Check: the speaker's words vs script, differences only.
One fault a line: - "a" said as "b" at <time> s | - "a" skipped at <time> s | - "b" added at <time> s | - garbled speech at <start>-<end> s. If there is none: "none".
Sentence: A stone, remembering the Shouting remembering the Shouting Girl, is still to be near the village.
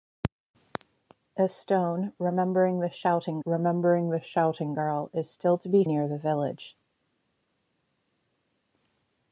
none